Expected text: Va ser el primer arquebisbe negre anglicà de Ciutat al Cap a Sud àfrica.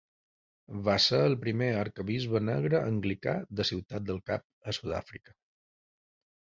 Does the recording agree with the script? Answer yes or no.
no